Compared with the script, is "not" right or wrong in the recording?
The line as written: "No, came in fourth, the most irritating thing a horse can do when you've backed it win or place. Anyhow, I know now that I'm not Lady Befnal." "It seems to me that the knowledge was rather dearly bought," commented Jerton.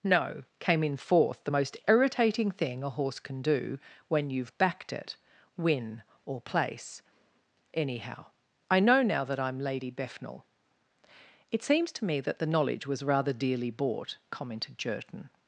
wrong